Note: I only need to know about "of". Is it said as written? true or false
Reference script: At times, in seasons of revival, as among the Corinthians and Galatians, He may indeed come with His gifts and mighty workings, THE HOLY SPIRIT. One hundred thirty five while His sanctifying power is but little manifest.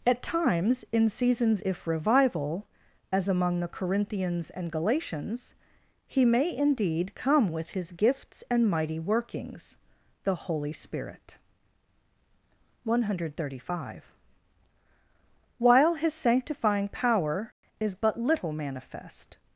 false